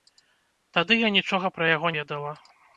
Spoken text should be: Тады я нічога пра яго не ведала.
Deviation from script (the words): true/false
true